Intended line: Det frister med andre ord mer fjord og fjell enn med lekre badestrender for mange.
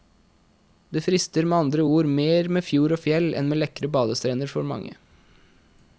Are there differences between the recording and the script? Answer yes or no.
yes